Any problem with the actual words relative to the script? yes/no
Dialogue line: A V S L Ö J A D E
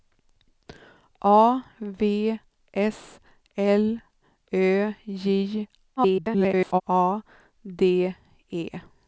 yes